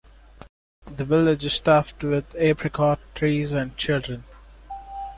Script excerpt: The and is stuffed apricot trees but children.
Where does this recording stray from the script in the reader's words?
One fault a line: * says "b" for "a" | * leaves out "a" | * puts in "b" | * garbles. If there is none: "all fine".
* says "village" for "and"
* puts in "with"
* says "and" for "but"